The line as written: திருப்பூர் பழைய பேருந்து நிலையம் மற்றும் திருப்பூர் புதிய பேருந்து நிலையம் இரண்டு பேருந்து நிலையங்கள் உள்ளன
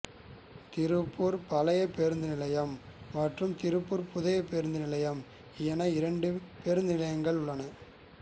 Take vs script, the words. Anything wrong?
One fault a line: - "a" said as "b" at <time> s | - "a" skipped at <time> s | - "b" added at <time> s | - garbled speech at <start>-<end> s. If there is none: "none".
- "என" added at 5.7 s